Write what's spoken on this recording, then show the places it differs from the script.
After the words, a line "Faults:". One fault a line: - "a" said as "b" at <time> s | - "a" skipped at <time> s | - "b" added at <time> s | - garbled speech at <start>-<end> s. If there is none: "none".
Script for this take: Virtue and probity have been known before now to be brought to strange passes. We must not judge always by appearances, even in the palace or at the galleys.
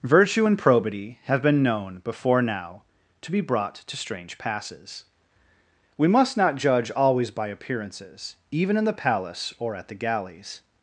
Virtue and probity have been known before now to be brought to strange passes. We must not judge always by appearances, even in the palace or at the galleys.
Faults:
none